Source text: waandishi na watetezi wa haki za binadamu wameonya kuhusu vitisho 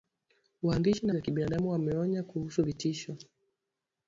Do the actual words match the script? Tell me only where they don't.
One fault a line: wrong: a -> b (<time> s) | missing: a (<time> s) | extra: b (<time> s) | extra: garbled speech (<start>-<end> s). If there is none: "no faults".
missing: watetezi wa haki (1.1 s)